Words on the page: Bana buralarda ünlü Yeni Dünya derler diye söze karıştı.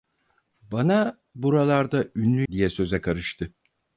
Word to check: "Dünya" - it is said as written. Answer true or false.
false